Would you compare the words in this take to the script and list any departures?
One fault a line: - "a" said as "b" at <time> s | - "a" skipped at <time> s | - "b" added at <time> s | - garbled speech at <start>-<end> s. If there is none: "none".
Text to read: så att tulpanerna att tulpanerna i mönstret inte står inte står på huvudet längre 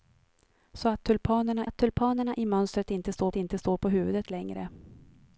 none